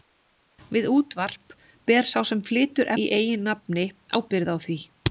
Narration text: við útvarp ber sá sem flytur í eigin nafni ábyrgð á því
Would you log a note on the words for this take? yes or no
no